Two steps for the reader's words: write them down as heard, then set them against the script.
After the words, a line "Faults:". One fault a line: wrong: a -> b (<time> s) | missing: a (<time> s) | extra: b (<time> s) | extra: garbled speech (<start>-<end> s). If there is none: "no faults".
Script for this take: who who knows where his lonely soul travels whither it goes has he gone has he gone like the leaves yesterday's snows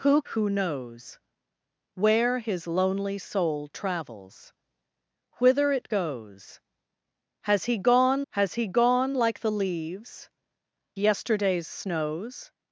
who who knows where his lonely soul travels whither it goes has he gone has he gone like the leaves yesterday's snows
Faults:
no faults